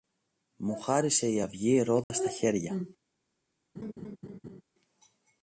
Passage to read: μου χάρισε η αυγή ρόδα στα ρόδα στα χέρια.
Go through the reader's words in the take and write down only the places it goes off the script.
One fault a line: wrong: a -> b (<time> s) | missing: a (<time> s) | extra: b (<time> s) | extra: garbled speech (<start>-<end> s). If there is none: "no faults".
missing: ρόδα στα (2.3 s)